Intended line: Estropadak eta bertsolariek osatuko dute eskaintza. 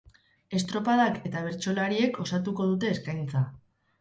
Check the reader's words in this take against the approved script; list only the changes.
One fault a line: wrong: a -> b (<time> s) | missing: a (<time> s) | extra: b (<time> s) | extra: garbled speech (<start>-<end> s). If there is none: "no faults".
no faults